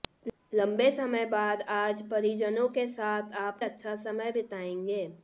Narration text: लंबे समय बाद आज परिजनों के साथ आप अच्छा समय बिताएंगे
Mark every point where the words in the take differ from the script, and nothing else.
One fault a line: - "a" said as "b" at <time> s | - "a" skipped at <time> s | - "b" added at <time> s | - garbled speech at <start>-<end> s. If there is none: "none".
none